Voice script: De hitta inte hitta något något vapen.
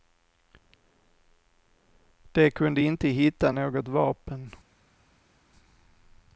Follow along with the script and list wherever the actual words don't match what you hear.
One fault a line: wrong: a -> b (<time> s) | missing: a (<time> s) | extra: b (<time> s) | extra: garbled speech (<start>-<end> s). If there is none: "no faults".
wrong: hitta -> kunde (2.5 s)
missing: något (3.9 s)